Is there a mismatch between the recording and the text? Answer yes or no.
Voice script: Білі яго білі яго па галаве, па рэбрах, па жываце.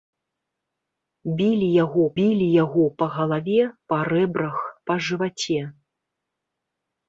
no